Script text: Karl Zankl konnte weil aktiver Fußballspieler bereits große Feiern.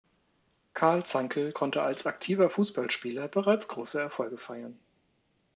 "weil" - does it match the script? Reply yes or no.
no